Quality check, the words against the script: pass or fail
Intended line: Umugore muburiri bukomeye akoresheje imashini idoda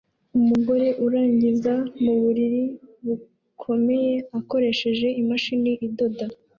fail